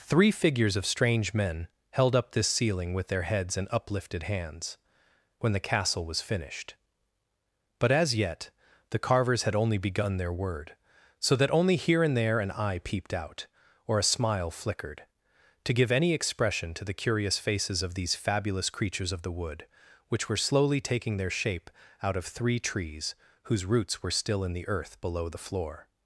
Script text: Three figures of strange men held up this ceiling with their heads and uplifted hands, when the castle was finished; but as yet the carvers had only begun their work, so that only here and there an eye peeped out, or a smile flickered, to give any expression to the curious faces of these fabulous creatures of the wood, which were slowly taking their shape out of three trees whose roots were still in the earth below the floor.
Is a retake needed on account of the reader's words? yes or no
yes